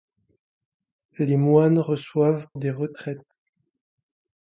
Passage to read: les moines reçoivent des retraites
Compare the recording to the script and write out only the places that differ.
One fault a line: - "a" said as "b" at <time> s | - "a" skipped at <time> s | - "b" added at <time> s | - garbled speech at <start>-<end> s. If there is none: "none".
none